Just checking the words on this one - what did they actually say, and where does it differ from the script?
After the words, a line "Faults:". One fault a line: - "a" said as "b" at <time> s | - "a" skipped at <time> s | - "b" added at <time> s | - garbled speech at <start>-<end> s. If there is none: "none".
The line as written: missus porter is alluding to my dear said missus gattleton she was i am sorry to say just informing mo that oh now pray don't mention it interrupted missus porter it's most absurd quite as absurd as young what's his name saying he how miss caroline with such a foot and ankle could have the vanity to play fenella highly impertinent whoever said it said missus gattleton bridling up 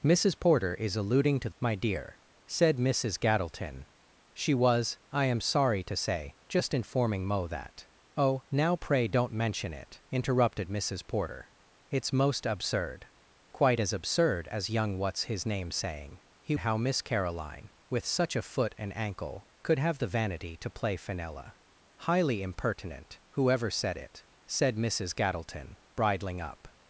missus porter is alluding to my dear said missus gattleton she was i am sorry to say just informing mo that oh now pray don't mention it interrupted missus porter it's most absurd quite as absurd as young what's his name saying he how miss caroline with such a foot and ankle could have the vanity to play fenella highly impertinent whoever said it said missus gattleton bridling up
Faults:
none